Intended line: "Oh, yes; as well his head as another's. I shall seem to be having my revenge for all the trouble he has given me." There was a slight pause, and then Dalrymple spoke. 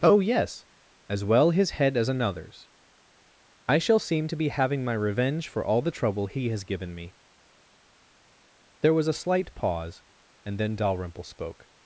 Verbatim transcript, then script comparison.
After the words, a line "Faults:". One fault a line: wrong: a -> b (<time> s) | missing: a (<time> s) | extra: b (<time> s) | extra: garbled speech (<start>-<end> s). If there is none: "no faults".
"Oh, yes; as well his head as another's. I shall seem to be having my revenge for all the trouble he has given me." There was a slight pause, and then Dalrymple spoke.
Faults:
no faults